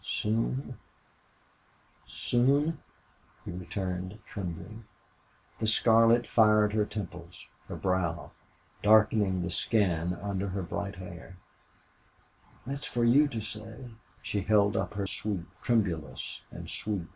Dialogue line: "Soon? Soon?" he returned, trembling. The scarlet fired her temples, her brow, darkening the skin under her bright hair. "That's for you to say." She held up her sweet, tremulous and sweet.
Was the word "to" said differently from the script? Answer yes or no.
no